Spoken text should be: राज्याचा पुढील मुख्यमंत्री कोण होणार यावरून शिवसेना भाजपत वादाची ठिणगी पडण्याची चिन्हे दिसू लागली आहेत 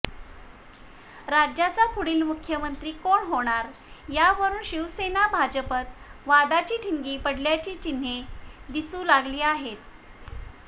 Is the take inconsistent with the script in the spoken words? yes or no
no